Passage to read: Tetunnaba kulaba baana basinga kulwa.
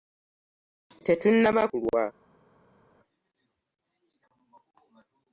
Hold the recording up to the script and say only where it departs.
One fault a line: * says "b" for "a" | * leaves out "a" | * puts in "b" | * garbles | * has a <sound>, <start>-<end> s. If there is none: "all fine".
* leaves out "kulaba baana basinga"